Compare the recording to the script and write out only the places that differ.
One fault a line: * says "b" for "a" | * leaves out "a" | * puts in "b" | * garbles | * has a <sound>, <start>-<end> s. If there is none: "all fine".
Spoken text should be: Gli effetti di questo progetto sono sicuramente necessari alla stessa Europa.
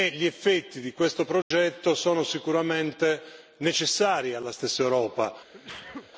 * has a dropout, 1.4-1.5 s
* has a sneeze, 5.5-6.1 s